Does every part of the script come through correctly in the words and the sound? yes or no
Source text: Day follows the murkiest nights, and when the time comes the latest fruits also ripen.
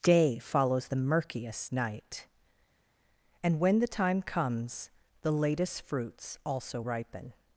no